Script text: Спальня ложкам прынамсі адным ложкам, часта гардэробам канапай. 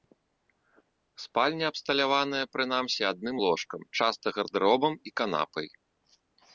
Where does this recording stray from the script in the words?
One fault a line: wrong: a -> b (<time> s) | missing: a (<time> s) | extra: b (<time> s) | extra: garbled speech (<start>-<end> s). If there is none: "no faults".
wrong: ложкам -> абсталяваная (1.7 s)
extra: і (5.1 s)